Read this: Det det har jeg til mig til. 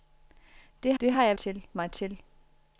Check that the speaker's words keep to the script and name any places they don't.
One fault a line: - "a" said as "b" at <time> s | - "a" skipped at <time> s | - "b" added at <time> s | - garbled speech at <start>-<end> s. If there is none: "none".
none